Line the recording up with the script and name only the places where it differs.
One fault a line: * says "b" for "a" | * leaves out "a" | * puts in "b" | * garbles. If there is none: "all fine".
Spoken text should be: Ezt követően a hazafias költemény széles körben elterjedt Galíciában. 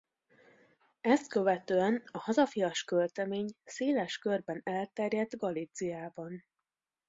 all fine